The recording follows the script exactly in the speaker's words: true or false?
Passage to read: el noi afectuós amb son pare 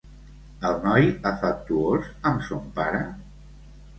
true